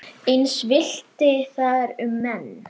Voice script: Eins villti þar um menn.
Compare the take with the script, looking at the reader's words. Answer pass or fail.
pass